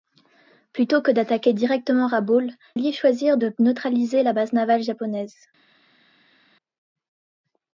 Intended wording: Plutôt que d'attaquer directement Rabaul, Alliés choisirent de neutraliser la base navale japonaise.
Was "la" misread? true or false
false